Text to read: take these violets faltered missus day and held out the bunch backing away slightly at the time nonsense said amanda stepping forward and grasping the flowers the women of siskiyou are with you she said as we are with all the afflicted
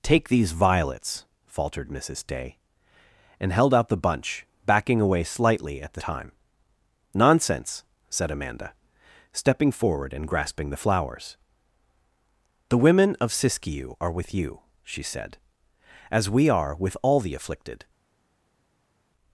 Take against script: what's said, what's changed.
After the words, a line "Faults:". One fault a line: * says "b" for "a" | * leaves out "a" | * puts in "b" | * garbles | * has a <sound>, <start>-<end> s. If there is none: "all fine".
take these violets faltered missus day and held out the bunch backing away slightly at the time nonsense said amanda stepping forward and grasping the flowers the women of siskiyou are with you she said as we are with all the afflicted
Faults:
all fine